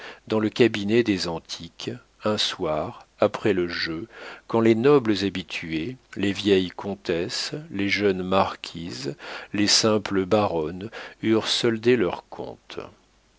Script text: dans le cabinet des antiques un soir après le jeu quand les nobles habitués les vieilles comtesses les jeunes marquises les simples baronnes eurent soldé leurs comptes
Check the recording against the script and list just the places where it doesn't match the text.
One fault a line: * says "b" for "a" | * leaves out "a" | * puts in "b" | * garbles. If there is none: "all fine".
all fine